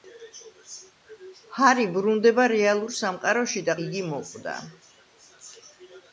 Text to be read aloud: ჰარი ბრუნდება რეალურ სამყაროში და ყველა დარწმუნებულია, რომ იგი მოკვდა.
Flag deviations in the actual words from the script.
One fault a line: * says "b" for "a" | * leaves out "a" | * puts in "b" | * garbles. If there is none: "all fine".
* leaves out "ყველა დარწმუნებულია რომ"